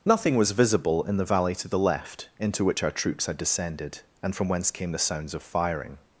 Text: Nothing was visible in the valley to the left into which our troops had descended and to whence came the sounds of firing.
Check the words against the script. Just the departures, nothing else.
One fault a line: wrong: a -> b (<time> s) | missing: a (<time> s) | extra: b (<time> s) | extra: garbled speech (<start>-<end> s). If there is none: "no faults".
wrong: to -> from (4.3 s)